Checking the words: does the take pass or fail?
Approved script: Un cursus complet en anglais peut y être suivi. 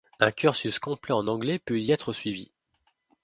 pass